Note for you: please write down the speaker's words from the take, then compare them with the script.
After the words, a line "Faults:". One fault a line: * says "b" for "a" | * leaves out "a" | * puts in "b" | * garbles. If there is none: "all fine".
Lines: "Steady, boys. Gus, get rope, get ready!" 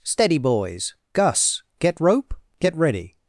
"Steady, boys. Gus, get rope, get ready!"
Faults:
all fine